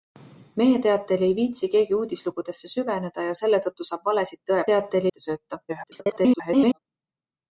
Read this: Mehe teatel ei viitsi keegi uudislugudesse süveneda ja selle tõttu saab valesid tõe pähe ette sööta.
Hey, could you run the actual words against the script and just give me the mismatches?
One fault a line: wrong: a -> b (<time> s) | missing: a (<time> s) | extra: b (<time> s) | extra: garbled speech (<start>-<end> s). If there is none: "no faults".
wrong: pähe -> teatel (4.7 s)
extra: garbled speech (5.7-6.8 s)